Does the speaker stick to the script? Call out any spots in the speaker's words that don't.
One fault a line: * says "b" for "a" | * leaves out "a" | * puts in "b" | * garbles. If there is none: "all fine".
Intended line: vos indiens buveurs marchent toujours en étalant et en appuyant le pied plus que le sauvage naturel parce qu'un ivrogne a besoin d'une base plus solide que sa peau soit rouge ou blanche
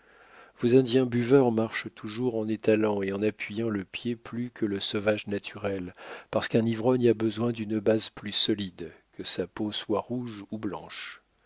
all fine